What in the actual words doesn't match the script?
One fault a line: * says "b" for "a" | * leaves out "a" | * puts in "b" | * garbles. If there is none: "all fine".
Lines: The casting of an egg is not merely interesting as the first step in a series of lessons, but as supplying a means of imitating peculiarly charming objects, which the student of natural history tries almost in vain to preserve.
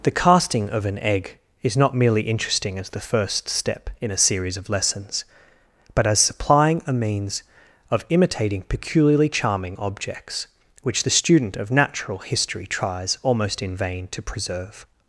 all fine